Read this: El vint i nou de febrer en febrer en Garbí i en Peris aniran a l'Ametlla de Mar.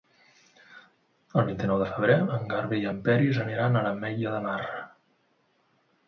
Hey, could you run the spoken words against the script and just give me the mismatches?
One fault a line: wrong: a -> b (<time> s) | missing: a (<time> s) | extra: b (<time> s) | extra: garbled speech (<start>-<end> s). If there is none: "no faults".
missing: febrer en (2.4 s)